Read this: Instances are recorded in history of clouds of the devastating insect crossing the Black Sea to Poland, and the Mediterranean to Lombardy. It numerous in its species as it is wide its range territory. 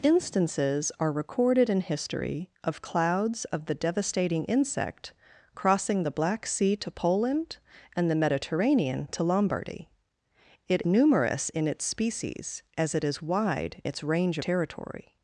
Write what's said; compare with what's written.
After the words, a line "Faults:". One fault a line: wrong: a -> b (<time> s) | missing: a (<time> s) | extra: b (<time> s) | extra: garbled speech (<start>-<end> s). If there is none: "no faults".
Instances are recorded in history of clouds of the devastating insect crossing the Black Sea to Poland, and the Mediterranean to Lombardy. It numerous in its species as it is wide its range territory.
Faults:
no faults